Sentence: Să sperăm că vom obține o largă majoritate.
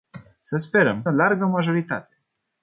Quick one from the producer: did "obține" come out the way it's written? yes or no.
no